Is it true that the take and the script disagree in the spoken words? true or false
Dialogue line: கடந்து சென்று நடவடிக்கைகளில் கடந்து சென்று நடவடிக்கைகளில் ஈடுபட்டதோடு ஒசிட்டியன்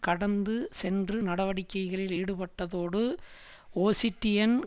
true